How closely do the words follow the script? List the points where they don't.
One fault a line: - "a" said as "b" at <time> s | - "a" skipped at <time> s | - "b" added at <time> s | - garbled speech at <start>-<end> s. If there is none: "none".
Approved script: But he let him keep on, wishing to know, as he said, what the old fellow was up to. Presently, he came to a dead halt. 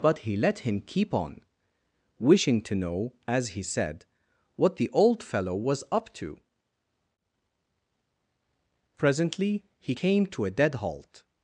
none